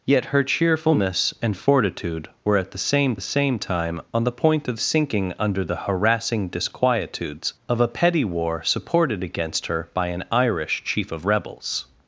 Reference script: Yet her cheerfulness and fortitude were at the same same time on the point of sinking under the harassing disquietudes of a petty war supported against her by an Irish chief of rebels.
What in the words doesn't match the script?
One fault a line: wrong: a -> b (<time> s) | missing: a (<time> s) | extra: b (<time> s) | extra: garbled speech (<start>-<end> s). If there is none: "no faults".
no faults